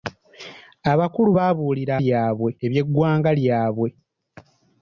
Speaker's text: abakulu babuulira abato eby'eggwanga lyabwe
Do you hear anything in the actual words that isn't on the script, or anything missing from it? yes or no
yes